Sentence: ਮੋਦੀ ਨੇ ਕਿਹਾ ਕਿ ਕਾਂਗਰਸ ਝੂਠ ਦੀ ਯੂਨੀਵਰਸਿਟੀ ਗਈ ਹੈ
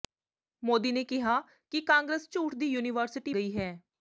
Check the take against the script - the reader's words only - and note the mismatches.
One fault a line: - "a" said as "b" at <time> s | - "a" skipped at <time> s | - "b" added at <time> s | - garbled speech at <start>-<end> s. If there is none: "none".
none